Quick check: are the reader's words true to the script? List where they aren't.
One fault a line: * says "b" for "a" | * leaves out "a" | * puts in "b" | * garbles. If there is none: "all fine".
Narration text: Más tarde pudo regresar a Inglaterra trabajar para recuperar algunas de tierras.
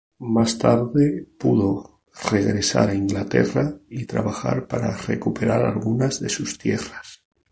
* puts in "y"
* puts in "sus"